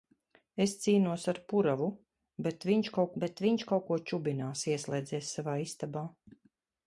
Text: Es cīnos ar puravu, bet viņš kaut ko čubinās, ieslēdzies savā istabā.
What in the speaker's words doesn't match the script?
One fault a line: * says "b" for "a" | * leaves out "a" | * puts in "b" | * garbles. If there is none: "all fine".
* puts in "bet viņš kaut"